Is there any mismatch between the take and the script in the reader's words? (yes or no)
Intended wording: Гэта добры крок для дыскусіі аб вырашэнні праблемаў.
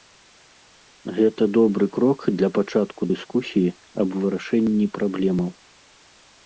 yes